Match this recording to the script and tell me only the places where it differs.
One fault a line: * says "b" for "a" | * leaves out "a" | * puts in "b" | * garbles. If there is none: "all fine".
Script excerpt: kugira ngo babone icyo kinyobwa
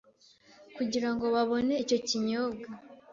all fine